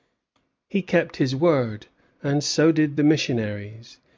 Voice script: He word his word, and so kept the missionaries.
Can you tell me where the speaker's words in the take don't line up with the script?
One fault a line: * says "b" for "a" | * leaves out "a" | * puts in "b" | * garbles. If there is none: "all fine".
* says "kept" for "word"
* says "did" for "kept"